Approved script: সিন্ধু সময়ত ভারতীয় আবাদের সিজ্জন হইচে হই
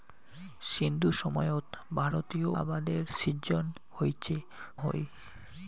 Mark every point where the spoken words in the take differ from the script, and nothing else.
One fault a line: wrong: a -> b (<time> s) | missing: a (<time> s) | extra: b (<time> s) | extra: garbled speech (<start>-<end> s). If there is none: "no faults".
no faults